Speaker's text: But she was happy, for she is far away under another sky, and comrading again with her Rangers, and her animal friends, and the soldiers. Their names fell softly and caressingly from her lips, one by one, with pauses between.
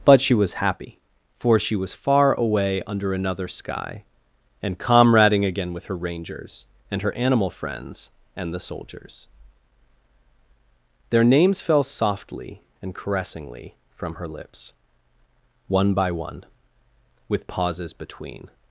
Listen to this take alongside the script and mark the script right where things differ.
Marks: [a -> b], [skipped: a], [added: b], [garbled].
But she was happy, for she [is -> was] far away under another sky, and comrading again with her Rangers, and her animal friends, and the soldiers. Their names fell softly and caressingly from her lips, one by one, with pauses between.